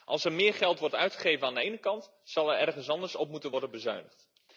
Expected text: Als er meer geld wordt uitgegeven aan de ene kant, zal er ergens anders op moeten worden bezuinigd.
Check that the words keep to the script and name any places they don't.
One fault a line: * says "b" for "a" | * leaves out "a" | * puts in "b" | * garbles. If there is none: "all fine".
all fine